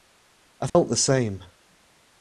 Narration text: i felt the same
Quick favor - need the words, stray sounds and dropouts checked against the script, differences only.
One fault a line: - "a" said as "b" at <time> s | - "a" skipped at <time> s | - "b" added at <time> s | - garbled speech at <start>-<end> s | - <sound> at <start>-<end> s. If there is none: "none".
- dropout at 0.7-0.8 s